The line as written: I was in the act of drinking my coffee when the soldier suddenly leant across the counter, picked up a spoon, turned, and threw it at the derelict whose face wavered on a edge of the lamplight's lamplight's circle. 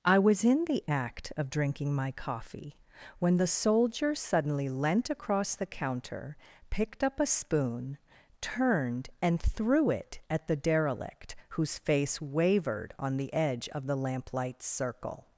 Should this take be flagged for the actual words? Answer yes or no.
yes